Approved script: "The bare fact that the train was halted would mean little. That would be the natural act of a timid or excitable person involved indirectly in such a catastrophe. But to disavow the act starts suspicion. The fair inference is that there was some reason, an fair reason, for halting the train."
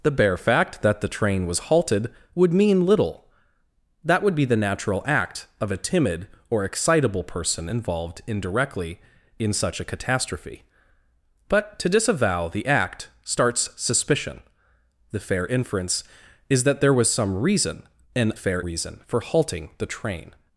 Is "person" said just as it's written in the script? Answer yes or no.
yes